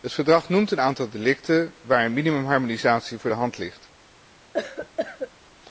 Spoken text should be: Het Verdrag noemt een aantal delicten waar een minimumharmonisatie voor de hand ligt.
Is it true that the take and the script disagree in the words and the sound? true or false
true